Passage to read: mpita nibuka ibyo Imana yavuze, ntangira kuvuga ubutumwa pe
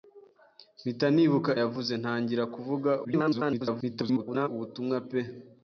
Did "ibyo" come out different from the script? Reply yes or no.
yes